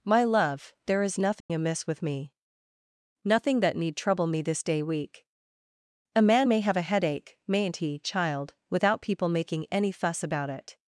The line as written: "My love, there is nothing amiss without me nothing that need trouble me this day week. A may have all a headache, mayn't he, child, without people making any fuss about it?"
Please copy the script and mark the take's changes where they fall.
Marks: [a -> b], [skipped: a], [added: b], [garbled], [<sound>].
"My love, there is nothing [dropout] amiss [without -> with] me nothing that need trouble me this day week. A [added: man] may have [skipped: all] a headache, mayn't he, child, without people making any fuss about it?"